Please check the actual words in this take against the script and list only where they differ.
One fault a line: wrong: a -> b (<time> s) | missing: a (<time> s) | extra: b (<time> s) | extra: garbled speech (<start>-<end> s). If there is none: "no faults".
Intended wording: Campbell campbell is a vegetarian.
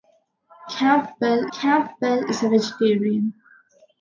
no faults